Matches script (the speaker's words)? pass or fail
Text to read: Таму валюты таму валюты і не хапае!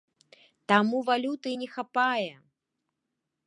fail